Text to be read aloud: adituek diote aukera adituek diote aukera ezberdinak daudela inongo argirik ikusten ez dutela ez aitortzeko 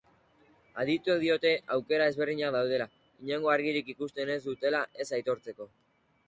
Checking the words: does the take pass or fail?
fail